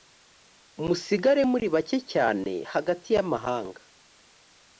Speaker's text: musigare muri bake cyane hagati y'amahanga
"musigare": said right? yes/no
yes